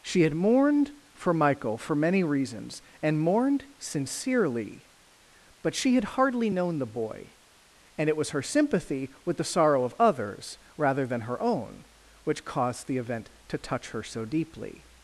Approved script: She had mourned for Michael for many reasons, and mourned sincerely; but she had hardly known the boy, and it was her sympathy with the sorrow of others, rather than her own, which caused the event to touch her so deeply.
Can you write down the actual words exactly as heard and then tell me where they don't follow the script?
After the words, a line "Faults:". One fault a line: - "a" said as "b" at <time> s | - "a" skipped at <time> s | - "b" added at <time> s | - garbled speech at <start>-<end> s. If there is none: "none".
She had mourned for Michael for many reasons, and mourned sincerely; but she had hardly known the boy, and it was her sympathy with the sorrow of others, rather than her own, which caused the event to touch her so deeply.
Faults:
none